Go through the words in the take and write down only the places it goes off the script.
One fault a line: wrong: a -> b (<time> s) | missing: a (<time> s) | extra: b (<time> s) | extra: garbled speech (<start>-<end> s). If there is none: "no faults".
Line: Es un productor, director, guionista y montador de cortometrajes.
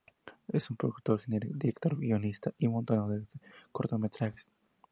no faults